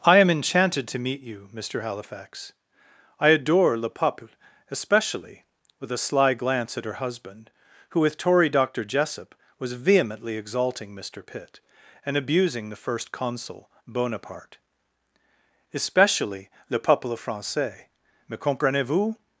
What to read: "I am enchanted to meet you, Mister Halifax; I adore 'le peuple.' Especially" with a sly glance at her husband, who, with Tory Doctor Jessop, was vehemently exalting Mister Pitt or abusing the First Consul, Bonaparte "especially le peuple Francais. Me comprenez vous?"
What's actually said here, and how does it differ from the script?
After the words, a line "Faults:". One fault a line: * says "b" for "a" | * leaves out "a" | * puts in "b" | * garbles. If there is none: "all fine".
"I am enchanted to meet you, Mister Halifax; I adore 'le peuple.' Especially" with a sly glance at her husband, who, with Tory Doctor Jessop, was vehemently exalting Mister Pitt and abusing the First Consul, Bonaparte "especially le peuple Francais. Me comprenez vous?"
Faults:
* says "and" for "or"